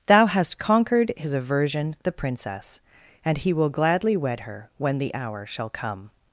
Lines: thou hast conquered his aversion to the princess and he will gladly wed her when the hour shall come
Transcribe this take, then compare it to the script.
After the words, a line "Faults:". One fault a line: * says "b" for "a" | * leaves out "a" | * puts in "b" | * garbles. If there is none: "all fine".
thou hast conquered his aversion the princess and he will gladly wed her when the hour shall come
Faults:
* leaves out "to"